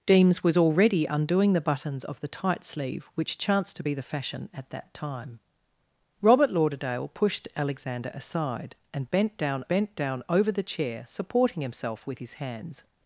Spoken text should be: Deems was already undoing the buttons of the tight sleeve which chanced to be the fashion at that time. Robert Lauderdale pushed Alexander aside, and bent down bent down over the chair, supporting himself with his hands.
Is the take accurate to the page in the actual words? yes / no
yes